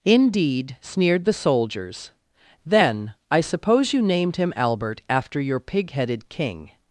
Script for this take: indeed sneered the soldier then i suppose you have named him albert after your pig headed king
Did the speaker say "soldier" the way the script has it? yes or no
no